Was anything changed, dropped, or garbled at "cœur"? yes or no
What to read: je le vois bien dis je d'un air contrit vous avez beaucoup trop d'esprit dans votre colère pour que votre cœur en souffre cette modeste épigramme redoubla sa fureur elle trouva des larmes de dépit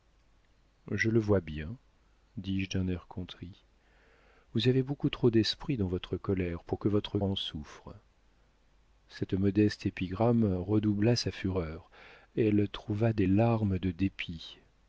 yes